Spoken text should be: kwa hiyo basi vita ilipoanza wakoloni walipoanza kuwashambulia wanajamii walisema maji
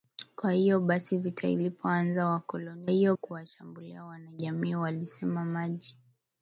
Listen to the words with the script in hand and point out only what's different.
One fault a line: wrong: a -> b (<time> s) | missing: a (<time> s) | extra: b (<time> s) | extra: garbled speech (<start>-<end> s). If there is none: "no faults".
wrong: walipoanza -> hiyo (2.9 s)